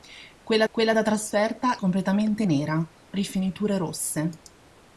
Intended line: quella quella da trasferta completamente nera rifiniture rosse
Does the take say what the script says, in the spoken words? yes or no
yes